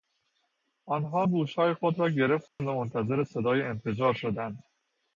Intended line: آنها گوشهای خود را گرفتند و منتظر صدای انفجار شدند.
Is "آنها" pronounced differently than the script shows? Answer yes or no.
no